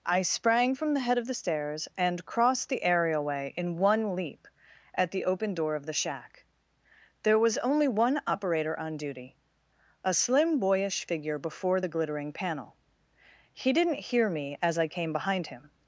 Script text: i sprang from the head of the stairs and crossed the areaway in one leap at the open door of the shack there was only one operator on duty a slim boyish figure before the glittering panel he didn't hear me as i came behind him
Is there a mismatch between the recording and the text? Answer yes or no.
no